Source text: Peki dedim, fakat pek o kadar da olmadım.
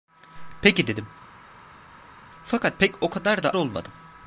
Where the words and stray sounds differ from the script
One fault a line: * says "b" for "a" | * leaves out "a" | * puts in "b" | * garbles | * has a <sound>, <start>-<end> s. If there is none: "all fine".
all fine